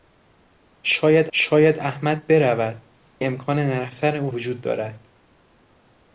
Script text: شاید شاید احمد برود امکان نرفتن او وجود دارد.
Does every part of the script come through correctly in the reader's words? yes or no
yes